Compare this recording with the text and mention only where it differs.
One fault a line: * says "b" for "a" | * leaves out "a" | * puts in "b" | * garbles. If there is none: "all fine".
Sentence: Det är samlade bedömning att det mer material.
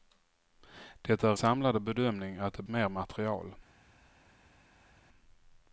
all fine